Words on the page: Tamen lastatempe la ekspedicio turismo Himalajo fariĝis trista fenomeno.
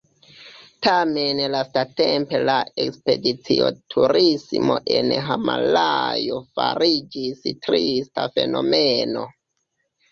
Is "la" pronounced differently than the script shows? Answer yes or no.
no